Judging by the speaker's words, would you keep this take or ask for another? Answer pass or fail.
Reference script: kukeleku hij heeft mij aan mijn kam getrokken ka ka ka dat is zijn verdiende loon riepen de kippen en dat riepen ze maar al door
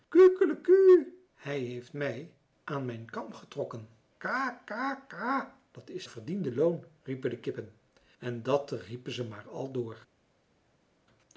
fail